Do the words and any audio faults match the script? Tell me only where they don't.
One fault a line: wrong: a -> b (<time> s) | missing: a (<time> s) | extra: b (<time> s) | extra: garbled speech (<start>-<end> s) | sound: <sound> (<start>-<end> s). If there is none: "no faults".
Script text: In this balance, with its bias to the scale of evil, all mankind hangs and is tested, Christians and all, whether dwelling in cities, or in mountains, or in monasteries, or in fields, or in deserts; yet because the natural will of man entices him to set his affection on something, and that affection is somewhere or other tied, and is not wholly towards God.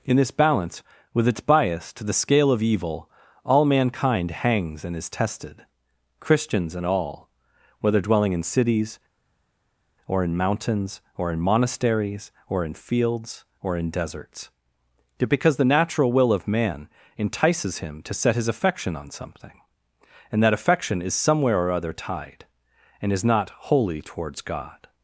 no faults